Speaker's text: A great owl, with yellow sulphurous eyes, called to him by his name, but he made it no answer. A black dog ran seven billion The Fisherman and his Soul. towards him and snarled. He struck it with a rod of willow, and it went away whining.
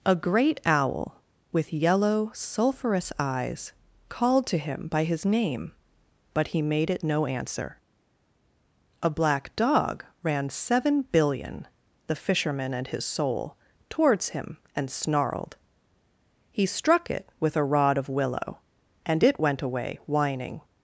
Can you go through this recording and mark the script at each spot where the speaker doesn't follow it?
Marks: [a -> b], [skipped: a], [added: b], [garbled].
A great owl, with yellow sulphurous eyes, called to him by his name, but he made it no answer. A black dog ran seven billion The Fisherman and his Soul. towards him and snarled. He struck it with a rod of willow, and it went away whining.